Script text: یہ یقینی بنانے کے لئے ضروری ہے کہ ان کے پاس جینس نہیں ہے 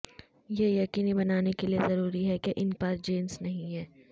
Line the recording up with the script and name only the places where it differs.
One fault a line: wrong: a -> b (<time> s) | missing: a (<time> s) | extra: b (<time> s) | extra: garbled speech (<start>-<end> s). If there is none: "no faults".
missing: کے (2.7 s)